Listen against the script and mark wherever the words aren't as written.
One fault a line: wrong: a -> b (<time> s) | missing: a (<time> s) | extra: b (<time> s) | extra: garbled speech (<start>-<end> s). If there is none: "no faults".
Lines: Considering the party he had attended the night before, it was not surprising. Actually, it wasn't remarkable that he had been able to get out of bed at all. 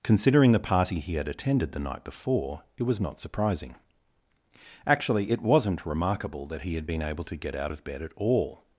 no faults